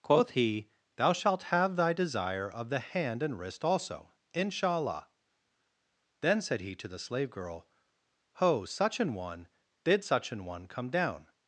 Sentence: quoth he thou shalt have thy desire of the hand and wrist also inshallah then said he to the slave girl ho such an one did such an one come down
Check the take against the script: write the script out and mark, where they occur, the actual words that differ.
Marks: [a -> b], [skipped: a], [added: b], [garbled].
quoth he thou shalt have thy desire of the hand and wrist also inshallah then said he to the slave girl ho such an one did such an one come down